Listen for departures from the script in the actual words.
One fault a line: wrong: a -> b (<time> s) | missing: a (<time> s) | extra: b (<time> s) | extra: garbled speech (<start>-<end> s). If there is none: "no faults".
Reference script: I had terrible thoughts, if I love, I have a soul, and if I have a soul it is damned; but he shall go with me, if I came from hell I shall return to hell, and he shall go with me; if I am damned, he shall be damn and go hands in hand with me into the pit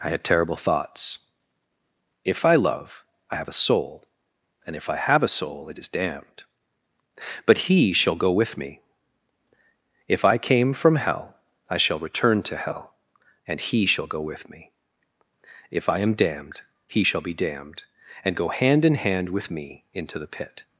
wrong: damn -> damned (17.3 s)
wrong: hands -> hand (18.5 s)